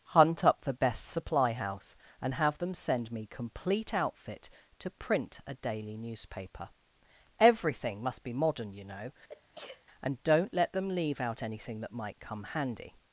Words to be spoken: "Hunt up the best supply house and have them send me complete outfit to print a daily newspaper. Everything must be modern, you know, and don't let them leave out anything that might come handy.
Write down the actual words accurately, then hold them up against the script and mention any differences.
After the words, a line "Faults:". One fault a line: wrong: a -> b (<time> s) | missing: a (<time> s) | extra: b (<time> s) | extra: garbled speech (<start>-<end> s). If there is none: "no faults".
"Hunt up the best supply house and have them send me complete outfit to print a daily newspaper. Everything must be modern, you know, and don't let them leave out anything that might come handy.
Faults:
no faults